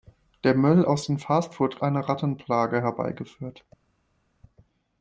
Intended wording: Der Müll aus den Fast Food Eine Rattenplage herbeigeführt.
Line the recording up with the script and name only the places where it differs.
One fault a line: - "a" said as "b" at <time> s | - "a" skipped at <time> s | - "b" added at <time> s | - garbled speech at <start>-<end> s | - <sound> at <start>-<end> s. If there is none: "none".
none